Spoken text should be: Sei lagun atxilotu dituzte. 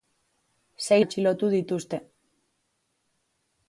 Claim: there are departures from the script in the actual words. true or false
true